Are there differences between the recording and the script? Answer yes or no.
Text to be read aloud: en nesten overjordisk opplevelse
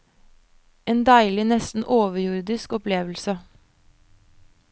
yes